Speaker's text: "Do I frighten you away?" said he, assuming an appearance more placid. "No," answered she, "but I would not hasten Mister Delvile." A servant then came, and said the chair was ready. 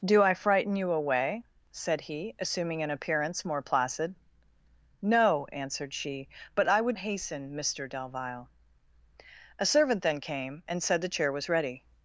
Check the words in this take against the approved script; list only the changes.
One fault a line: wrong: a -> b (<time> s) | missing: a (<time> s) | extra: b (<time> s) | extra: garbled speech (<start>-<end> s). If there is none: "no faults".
missing: not (7.0 s)